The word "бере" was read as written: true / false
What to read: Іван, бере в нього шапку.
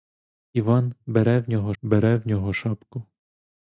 true